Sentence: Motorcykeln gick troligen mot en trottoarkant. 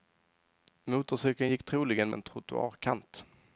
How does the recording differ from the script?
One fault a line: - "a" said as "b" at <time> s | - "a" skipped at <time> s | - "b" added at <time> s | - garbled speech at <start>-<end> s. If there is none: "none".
- "mot" skipped at 2.1 s